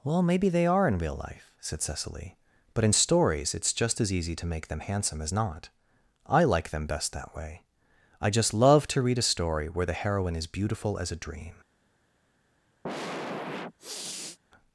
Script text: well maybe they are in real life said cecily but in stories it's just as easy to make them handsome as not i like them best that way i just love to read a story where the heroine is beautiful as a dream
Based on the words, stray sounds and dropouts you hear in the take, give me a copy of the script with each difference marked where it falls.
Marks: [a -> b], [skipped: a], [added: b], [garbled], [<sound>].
well maybe they are in real life said cecily but in stories it's just as easy to make them handsome as not i like them best that way i just love to read a story where the heroine is beautiful as a dream [sniff]